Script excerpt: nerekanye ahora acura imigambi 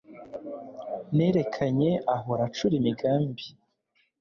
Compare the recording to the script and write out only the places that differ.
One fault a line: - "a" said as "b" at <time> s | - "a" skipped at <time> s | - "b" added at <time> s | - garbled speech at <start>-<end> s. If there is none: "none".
none